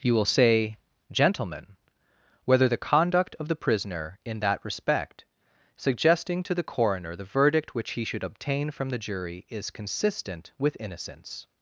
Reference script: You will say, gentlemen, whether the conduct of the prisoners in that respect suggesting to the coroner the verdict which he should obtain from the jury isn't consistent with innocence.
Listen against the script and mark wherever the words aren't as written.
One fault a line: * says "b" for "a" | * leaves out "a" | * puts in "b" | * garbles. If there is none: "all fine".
* says "prisoner" for "prisoners"
* says "is" for "isn't"